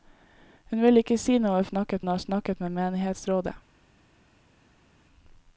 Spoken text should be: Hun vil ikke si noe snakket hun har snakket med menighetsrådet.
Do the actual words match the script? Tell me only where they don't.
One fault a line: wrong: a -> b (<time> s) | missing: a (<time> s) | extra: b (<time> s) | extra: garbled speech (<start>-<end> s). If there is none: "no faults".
no faults